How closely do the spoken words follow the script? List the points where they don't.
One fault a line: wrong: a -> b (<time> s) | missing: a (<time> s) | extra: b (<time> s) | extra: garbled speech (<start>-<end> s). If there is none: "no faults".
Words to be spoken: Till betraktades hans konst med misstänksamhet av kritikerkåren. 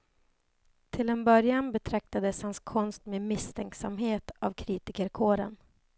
extra: en början (1.1 s)